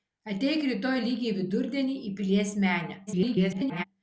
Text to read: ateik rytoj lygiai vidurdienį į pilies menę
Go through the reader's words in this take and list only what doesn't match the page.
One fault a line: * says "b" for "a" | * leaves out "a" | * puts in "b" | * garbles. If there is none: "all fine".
* garbles